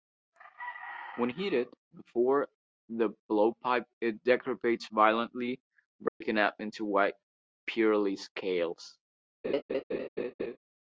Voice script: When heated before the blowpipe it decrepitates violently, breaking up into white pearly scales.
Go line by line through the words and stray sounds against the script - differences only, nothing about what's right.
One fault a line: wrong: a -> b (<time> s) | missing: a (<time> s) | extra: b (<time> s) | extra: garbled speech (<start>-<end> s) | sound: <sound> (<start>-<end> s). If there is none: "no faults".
sound: dropout (6.1-6.2 s)
sound: laugh (9.4-10.6 s)